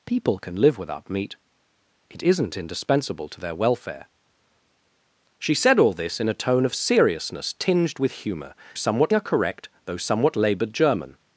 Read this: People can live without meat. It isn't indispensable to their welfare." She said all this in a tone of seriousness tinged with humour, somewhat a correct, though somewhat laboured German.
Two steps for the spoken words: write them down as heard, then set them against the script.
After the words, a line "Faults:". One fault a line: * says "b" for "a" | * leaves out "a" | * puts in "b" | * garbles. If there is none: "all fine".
People can live without meat. It isn't indispensable to their welfare." She said all this in a tone of seriousness tinged with humour, somewhat a correct, though somewhat laboured German.
Faults:
all fine